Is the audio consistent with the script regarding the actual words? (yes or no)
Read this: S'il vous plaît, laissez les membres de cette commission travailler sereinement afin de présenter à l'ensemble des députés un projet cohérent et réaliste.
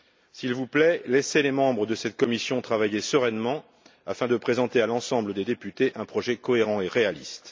yes